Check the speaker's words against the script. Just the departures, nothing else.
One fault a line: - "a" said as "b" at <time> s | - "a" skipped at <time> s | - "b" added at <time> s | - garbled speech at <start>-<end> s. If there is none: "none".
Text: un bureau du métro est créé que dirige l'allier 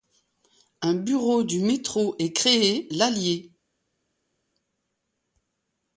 - "que dirige" skipped at 2.9 s